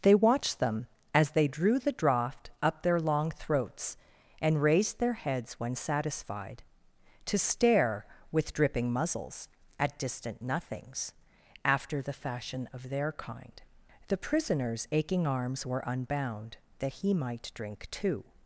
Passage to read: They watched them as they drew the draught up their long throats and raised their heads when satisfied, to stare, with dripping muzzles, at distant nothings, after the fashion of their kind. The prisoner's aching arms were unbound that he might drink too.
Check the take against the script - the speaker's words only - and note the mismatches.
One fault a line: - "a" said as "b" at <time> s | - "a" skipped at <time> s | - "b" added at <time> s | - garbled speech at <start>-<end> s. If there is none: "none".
none